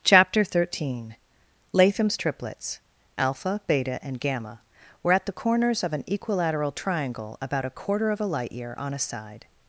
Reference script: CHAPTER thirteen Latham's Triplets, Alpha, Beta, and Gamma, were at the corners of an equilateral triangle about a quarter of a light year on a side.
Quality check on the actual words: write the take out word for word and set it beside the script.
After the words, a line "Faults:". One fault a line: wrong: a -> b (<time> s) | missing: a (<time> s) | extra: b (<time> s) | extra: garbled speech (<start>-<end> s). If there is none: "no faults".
CHAPTER thirteen Latham's Triplets, Alpha, Beta, and Gamma, were at the corners of an equilateral triangle about a quarter of a light year on a side.
Faults:
no faults